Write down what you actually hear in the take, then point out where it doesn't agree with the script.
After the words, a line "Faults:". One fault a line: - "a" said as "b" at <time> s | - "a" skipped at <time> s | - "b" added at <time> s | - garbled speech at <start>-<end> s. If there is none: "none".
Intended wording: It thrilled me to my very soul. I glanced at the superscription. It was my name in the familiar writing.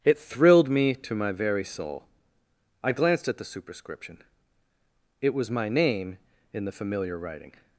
It thrilled me to my very soul. I glanced at the superscription. It was my name in the familiar writing.
Faults:
none